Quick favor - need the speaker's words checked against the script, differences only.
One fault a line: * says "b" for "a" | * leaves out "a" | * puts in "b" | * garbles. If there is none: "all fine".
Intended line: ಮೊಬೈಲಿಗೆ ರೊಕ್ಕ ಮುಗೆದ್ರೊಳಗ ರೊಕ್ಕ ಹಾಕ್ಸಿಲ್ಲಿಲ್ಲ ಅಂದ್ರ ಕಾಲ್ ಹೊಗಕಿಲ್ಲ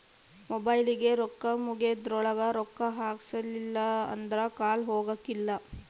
all fine